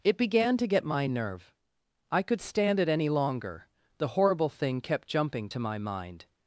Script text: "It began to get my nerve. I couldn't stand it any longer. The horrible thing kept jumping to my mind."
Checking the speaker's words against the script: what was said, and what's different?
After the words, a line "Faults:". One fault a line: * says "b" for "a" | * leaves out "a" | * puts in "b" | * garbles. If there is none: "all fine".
"It began to get my nerve. I could stand it any longer. The horrible thing kept jumping to my mind."
Faults:
* says "could" for "couldn't"